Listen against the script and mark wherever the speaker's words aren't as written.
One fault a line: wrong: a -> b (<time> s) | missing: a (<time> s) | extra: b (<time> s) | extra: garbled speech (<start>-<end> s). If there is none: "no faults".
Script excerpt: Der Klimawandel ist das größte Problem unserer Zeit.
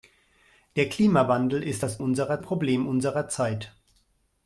wrong: größte -> unserer (2.0 s)